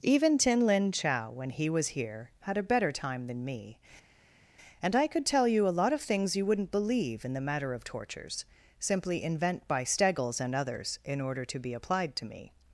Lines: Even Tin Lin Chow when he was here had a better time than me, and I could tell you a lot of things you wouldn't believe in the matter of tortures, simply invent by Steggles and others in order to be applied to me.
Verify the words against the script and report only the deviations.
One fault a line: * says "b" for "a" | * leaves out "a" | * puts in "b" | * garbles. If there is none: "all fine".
all fine